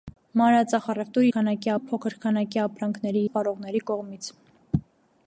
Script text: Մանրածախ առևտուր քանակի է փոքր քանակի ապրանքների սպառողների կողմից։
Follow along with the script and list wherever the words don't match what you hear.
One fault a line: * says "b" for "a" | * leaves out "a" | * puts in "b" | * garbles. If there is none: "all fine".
all fine